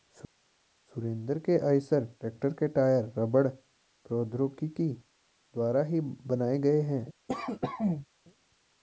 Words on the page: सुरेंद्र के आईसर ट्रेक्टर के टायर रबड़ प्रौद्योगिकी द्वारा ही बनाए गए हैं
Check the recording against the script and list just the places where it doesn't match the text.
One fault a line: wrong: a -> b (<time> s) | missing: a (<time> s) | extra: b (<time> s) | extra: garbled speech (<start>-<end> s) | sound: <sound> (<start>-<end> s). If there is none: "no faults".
sound: cough (7.3-8.1 s)